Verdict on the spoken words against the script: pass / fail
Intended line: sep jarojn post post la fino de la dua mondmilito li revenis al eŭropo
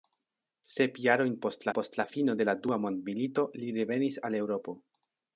pass